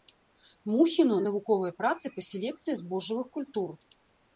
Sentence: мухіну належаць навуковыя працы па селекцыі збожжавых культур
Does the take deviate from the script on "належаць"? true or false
true